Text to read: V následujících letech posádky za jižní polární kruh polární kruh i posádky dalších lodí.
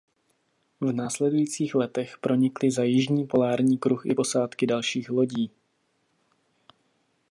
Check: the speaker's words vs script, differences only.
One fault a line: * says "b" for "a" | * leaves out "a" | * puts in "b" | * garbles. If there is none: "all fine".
* says "pronikly" for "posádky"
* leaves out "polární kruh"